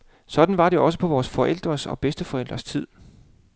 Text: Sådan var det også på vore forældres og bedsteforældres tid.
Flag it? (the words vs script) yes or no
no